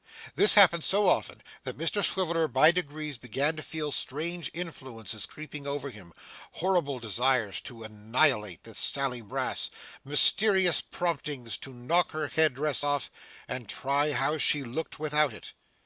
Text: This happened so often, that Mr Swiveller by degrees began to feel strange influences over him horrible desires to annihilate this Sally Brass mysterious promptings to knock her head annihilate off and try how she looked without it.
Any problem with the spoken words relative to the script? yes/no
yes